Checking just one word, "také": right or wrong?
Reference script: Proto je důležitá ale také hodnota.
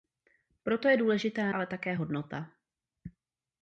right